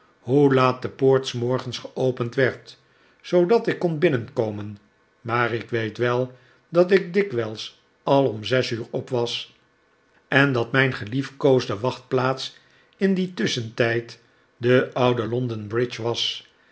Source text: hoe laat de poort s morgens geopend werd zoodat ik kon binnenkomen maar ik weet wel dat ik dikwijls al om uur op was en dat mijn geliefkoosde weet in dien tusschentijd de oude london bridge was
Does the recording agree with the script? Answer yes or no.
no